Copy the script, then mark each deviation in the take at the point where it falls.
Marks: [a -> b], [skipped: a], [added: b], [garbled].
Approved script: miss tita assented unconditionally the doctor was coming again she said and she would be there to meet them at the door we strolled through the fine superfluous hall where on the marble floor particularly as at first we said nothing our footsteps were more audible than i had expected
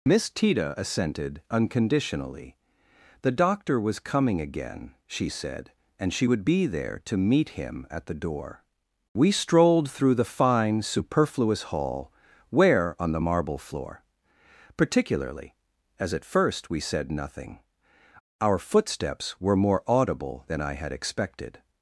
miss tita assented unconditionally the doctor was coming again she said and she would be there to meet [them -> him] at the door we strolled through the fine superfluous hall where on the marble floor particularly as at first we said nothing our footsteps were more audible than i had expected